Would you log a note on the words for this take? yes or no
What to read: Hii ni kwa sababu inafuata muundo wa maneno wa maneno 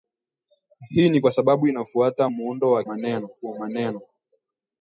no